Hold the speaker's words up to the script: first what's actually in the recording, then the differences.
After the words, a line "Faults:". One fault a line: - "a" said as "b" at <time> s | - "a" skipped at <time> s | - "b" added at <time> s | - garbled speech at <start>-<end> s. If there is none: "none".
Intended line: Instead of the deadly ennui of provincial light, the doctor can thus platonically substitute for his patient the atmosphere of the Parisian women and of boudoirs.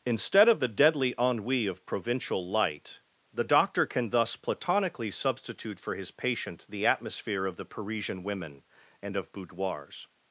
Instead of the deadly ennui of provincial light, the doctor can thus platonically substitute for his patient the atmosphere of the Parisian women and of boudoirs.
Faults:
none